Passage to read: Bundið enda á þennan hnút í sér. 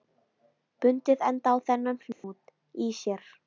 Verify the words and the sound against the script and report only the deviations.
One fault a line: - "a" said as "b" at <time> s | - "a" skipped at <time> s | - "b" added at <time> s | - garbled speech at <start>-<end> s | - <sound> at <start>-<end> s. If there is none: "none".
- dropout at 2.1-2.2 s